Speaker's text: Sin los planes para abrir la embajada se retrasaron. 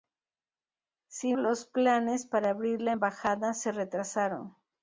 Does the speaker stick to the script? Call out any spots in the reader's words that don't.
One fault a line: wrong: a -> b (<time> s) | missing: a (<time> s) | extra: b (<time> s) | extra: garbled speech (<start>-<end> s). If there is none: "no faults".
no faults